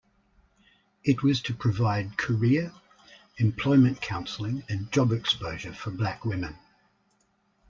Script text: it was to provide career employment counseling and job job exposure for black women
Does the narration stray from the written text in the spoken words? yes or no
yes